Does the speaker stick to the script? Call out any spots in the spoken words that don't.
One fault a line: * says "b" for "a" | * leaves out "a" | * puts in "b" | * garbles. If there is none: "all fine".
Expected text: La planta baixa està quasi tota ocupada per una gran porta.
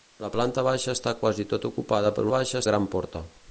* says "baixa" for "una"